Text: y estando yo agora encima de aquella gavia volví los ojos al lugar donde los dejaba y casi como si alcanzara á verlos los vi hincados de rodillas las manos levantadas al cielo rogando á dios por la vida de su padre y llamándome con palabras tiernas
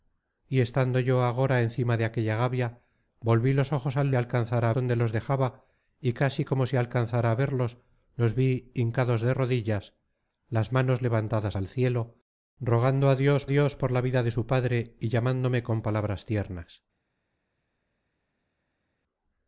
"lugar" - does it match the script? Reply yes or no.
no